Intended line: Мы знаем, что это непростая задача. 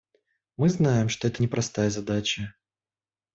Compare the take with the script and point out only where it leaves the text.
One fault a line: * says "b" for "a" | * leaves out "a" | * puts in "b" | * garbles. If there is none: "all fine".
all fine